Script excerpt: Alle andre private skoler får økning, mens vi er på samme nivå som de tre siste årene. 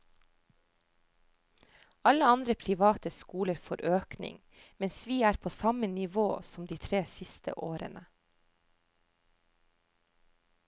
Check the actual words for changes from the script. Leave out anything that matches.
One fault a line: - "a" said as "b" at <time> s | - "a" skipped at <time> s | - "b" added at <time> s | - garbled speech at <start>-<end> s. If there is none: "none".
none